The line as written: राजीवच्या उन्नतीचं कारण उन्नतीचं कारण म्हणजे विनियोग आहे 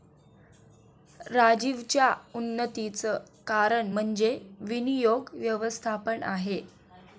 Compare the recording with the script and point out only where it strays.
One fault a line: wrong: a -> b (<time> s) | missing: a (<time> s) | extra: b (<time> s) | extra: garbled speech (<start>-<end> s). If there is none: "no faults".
missing: उन्नतीचं कारण (3.9 s)
extra: व्यवस्थापन (5.3 s)